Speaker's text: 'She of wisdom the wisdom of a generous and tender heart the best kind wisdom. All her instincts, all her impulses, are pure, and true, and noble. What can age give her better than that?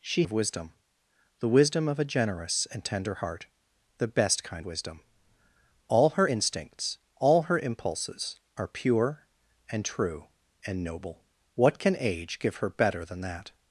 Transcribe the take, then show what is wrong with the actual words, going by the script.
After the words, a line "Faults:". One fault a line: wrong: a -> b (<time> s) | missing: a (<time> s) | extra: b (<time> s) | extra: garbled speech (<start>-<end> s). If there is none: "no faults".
'She of wisdom the wisdom of a generous and tender heart the best kind wisdom. All her instincts, all her impulses, are pure, and true, and noble. What can age give her better than that?
Faults:
no faults